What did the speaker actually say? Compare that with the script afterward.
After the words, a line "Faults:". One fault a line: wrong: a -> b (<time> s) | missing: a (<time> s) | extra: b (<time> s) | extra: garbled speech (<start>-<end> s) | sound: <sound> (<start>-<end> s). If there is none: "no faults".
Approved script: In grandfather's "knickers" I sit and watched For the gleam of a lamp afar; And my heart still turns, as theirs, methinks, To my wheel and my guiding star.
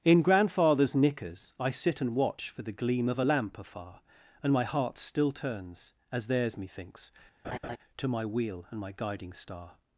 In grandfather's "knickers" I sit and watch For the gleam of a lamp afar; And my heart still turns, as theirs, methinks, To my wheel and my guiding star.
Faults:
wrong: watched -> watch (2.1 s)
sound: laugh (7.4-7.8 s)